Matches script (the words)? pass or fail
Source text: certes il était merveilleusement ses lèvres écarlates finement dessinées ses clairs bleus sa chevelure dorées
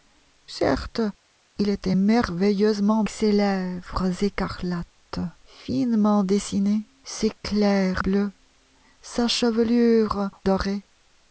pass